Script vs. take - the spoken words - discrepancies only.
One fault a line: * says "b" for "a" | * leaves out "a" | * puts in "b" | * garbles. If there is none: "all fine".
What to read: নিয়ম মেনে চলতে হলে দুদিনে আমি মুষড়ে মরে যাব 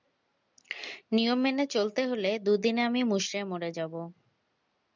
all fine